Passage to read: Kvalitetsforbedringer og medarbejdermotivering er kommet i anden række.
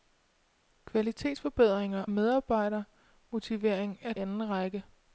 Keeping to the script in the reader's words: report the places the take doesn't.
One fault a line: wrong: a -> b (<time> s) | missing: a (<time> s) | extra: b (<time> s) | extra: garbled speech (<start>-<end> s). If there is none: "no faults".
missing: og (2.0 s)
missing: kommet i (4.1 s)